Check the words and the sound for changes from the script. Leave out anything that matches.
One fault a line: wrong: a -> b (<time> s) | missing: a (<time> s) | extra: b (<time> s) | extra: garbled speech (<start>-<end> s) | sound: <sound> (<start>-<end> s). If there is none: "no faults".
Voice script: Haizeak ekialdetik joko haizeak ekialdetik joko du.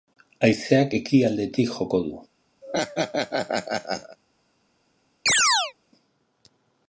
missing: haizeak ekialdetik joko (2.0 s)
sound: laugh (2.6-4.2 s)
sound: chirp (5.3-5.7 s)